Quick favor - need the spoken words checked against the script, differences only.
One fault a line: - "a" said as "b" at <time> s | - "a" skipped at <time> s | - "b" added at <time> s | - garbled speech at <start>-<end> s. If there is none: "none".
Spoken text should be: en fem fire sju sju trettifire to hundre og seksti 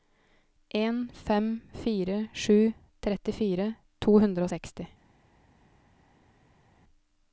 - "sju" skipped at 2.6 s